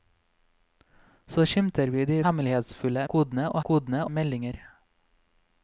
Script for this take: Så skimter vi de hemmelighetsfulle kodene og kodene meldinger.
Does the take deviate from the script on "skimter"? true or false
false